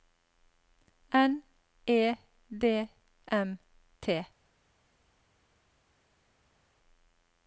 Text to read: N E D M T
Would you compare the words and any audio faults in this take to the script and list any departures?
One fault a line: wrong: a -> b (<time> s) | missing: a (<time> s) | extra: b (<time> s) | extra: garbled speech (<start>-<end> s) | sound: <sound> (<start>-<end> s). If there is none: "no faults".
no faults